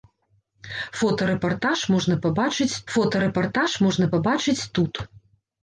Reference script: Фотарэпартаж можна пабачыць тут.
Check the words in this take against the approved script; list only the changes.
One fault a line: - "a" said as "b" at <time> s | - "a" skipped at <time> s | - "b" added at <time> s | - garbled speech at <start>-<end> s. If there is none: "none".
- "фотарэпартаж можна пабачыць" added at 3.0 s